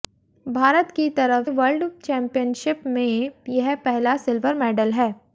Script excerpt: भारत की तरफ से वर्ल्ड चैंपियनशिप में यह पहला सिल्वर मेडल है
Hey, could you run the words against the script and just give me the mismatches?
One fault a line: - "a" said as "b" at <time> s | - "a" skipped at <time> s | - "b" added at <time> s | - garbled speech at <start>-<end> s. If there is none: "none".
- "से" skipped at 1.5 s